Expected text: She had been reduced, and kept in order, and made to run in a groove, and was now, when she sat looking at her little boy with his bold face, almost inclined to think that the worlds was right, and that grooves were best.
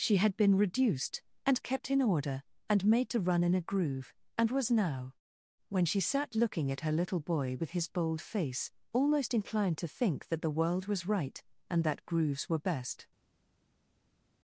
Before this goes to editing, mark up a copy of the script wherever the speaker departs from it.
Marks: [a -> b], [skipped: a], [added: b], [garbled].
She had been reduced, and kept in order, and made to run in a groove, and was now, when she sat looking at her little boy with his bold face, almost inclined to think that the [worlds -> world] was right, and that grooves were best.